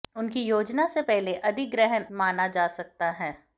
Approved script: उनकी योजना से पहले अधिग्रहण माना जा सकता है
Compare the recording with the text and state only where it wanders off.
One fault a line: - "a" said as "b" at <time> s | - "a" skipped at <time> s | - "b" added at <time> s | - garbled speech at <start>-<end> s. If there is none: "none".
none